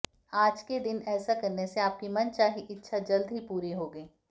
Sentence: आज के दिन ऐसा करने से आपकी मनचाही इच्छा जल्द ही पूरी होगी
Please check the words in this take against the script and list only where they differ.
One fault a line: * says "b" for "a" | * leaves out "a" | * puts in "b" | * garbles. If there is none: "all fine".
all fine